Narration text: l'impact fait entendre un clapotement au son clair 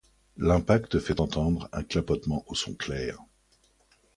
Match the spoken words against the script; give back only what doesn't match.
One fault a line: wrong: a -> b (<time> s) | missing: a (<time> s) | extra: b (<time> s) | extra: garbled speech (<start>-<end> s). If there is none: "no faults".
no faults